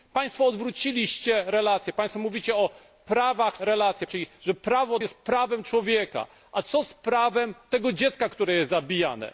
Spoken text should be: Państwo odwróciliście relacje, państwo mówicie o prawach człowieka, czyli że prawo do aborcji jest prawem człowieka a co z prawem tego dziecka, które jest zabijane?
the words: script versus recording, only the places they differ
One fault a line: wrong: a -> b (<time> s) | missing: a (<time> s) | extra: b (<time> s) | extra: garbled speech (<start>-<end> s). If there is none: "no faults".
wrong: człowieka -> relacje (3.6 s)
missing: do aborcji (5.0 s)